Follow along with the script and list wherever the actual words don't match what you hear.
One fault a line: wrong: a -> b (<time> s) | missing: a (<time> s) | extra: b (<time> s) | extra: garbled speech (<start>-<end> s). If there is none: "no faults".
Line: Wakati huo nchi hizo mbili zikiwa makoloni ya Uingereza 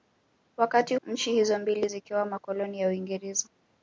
missing: huo (0.9 s)